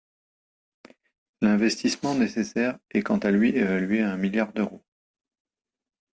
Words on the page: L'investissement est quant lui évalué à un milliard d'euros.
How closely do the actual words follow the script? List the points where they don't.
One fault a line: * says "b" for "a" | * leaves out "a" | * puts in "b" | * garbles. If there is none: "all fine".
* puts in "nécessaire"
* puts in "à"